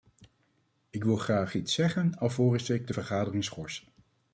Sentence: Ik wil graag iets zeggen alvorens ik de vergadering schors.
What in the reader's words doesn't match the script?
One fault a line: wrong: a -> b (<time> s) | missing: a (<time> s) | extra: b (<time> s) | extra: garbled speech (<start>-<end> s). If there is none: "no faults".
no faults